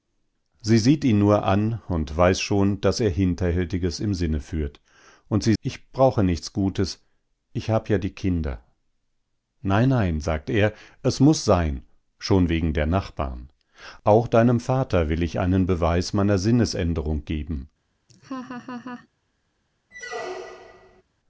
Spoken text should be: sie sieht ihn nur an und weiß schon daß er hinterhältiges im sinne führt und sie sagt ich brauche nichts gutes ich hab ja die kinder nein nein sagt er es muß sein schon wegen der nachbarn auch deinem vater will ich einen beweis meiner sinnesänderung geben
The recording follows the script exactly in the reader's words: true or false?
false